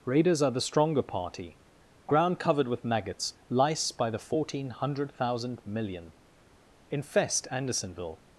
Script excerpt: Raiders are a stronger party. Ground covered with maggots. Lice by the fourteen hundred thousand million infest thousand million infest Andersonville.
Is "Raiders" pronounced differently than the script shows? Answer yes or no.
no